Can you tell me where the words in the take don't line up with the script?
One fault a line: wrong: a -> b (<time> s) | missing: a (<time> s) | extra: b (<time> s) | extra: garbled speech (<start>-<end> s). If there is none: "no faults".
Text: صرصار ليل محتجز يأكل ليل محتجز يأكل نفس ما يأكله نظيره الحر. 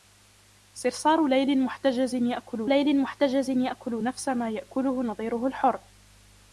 no faults